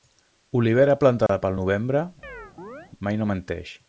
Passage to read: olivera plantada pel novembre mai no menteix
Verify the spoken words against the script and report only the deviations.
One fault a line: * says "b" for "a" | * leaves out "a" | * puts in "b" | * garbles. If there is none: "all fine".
all fine